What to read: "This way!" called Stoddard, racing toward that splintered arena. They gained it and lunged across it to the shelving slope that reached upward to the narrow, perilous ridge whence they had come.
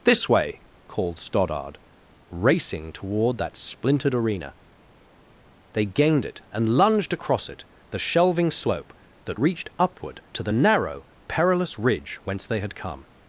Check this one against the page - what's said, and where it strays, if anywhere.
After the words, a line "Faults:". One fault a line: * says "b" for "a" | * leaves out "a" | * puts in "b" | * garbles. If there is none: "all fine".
"This way!" called Stoddard, racing toward that splintered arena. They gained it and lunged across it the shelving slope that reached upward to the narrow, perilous ridge whence they had come.
Faults:
* leaves out "to"